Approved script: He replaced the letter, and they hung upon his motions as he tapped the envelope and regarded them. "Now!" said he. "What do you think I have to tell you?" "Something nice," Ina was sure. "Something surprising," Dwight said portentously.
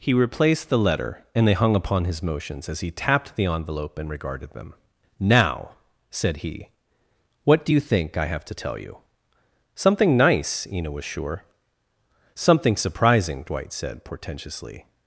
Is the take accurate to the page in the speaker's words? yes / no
yes